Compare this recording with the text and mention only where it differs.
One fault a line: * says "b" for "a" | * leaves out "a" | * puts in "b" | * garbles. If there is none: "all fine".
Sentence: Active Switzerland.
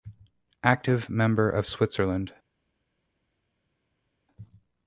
* puts in "member of"